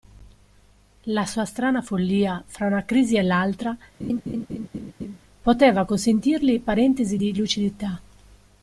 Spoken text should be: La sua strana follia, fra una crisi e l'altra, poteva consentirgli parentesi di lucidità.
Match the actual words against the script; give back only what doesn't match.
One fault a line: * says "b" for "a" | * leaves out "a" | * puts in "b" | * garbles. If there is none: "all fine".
all fine